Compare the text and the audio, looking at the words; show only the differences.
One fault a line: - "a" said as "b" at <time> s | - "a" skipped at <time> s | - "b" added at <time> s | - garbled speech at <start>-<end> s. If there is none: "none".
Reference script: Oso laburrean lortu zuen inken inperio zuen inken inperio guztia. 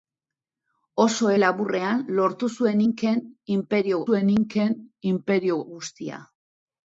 none